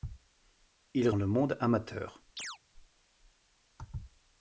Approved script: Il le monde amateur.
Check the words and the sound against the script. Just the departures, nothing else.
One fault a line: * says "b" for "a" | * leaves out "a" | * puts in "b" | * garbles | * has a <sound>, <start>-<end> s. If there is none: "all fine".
* has a chirp, 2.4-2.6 s